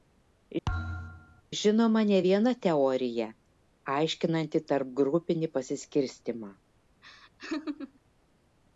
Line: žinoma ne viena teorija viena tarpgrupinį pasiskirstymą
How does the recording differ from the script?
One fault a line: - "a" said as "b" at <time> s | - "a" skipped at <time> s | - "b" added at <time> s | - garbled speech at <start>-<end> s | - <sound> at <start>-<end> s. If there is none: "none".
- thud at 0.7-1.4 s
- "viena" said as "aiškinanti" at 3.9 s
- laugh at 7.0-8.0 s